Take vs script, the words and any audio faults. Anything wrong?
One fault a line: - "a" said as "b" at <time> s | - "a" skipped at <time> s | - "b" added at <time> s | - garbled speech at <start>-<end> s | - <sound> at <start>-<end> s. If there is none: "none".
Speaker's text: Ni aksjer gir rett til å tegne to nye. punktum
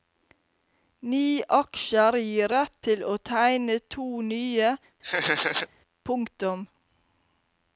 - laugh at 5.0-5.7 s